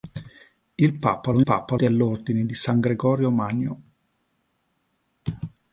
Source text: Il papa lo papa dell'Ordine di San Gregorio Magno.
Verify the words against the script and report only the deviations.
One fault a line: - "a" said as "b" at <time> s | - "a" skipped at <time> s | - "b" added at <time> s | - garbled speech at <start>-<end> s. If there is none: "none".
none